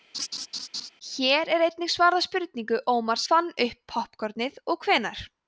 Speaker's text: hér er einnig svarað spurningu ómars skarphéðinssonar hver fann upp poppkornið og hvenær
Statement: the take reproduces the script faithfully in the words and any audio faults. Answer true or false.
false